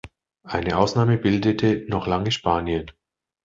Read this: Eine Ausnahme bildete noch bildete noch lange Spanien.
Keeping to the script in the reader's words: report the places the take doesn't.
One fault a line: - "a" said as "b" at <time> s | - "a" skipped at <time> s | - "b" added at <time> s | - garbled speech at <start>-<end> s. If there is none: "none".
- "bildete noch" skipped at 2.1 s